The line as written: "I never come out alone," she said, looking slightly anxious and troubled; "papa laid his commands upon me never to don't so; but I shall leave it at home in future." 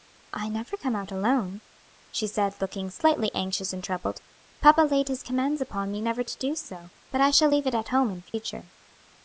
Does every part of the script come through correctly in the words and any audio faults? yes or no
no